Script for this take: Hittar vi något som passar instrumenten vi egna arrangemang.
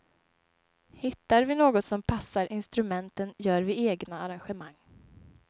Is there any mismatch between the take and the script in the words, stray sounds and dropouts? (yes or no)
yes